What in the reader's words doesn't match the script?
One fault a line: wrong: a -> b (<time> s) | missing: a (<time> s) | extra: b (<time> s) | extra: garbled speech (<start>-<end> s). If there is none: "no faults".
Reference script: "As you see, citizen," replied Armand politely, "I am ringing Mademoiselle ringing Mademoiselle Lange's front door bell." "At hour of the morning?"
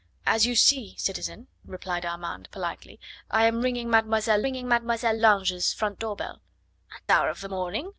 no faults